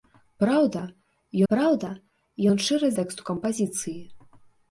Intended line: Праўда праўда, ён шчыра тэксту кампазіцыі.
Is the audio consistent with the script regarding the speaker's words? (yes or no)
yes